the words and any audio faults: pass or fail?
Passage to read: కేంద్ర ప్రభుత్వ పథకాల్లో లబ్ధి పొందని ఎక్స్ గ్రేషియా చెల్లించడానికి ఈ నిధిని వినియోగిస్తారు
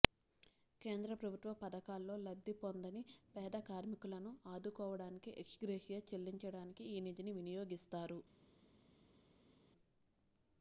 fail